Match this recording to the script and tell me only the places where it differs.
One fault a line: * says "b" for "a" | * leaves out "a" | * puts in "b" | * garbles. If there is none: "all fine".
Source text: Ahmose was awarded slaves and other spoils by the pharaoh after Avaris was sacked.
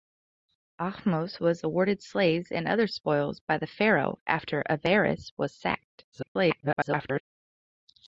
* garbles